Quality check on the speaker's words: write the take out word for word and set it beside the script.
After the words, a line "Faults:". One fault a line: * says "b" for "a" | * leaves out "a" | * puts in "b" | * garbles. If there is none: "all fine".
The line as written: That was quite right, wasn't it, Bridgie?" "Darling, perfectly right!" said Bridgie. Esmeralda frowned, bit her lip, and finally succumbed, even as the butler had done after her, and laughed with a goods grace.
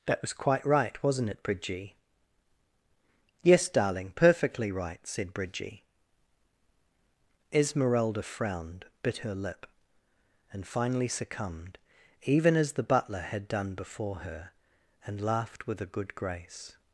That was quite right, wasn't it, Bridgie?" "Yes, darling, perfectly right!" said Bridgie. Esmeralda frowned, bit her lip, and finally succumbed, even as the butler had done before her, and laughed with a good grace.
Faults:
* puts in "Yes"
* says "before" for "after"
* says "good" for "goods"